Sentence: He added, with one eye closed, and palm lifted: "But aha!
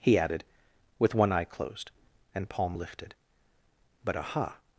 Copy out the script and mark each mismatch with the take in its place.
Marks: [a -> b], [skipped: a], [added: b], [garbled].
He added, with one eye closed, and palm lifted: "But aha!